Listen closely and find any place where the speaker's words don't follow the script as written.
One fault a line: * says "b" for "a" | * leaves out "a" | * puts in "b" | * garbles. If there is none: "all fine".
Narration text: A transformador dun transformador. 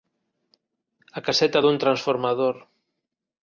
* says "caseta" for "transformador"